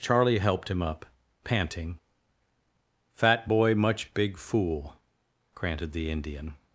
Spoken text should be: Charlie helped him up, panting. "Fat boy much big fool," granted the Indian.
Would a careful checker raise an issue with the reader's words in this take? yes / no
no